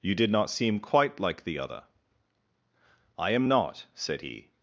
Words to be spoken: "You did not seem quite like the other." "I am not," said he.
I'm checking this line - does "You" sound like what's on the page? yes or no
yes